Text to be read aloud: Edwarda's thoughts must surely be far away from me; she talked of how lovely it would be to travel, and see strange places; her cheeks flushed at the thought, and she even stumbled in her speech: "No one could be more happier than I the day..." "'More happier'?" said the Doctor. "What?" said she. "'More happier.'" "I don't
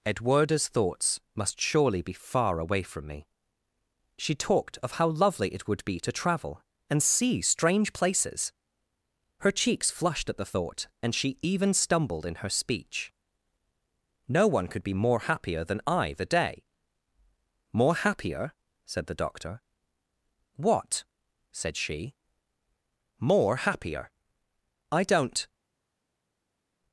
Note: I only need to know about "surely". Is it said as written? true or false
true